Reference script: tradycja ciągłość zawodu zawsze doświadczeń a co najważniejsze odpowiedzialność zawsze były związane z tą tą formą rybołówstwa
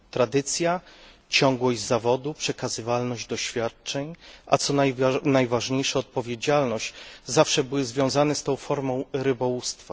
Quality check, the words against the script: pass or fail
fail